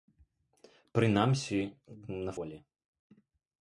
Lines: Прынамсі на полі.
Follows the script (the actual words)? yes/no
yes